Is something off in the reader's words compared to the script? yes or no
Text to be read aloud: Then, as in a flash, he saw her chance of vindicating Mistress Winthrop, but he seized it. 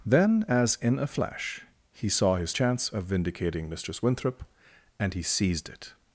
yes